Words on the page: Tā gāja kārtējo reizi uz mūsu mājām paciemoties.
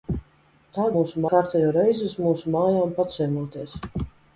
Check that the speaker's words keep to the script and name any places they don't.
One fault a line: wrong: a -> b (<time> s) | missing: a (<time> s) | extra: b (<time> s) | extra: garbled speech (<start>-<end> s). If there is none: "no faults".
wrong: gāja -> mūsu (1.0 s)